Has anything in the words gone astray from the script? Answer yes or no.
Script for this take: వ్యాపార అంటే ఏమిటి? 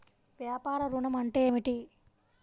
yes